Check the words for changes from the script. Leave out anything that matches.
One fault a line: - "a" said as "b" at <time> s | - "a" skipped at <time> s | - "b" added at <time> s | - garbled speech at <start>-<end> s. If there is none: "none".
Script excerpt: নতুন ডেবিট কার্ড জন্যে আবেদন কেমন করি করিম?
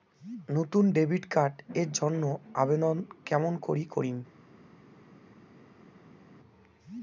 - "এর" added at 1.8 s